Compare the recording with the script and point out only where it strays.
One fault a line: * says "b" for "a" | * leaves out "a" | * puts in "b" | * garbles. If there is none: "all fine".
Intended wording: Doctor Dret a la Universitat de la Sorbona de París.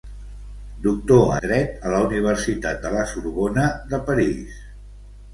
all fine